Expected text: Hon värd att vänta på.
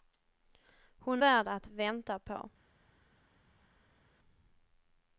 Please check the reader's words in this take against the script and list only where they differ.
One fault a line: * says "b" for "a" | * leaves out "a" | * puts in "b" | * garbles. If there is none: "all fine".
all fine